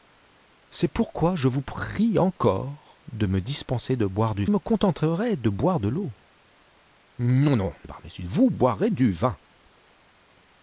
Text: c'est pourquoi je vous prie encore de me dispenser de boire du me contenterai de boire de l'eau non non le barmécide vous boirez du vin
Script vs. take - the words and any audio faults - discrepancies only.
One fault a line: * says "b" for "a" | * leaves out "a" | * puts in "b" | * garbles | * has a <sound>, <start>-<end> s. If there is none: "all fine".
all fine